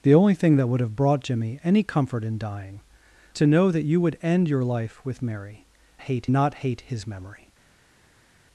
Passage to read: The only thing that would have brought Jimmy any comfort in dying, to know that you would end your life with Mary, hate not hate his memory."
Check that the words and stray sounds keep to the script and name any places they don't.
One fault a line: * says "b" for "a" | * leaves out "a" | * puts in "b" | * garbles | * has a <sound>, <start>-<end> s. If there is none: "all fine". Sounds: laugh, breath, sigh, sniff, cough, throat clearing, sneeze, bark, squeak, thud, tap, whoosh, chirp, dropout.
all fine